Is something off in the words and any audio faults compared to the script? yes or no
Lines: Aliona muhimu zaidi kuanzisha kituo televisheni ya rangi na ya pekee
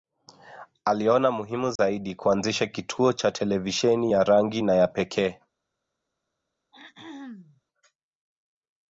yes